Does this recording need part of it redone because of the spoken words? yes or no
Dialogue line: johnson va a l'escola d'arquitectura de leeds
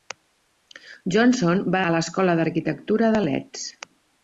no